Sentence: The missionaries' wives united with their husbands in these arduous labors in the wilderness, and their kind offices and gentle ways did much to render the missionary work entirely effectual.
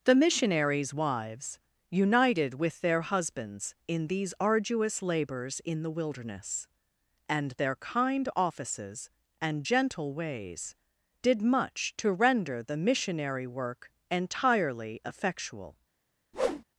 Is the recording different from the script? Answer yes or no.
no